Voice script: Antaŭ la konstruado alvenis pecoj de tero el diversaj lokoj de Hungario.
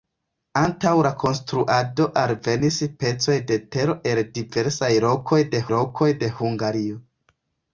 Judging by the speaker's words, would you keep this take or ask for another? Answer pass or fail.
fail